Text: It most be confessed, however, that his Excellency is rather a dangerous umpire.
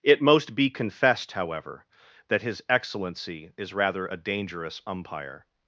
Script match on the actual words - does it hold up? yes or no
yes